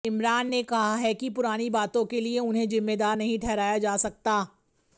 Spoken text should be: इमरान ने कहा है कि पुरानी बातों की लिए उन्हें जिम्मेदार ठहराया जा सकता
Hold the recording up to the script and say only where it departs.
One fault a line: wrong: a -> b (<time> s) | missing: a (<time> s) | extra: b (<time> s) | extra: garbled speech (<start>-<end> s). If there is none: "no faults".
wrong: की -> के (2.0 s)
extra: नहीं (3.1 s)